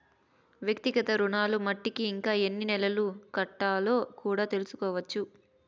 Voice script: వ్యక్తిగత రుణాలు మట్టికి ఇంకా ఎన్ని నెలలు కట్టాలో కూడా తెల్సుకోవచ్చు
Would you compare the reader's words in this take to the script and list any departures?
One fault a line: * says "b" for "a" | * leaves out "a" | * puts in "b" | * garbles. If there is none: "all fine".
all fine